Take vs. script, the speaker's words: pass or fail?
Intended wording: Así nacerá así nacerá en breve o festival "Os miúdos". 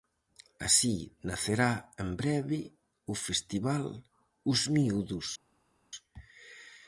fail